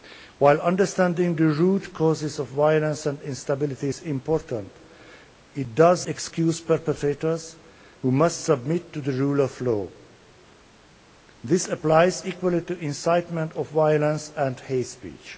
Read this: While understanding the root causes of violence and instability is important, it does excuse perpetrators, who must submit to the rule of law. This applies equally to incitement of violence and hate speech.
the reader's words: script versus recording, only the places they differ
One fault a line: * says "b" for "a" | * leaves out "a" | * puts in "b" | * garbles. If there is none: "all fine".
all fine